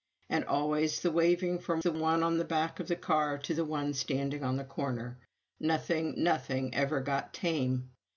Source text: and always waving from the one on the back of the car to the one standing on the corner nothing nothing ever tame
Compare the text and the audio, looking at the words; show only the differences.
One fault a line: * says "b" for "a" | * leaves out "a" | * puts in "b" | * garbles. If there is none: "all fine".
* puts in "the"
* puts in "got"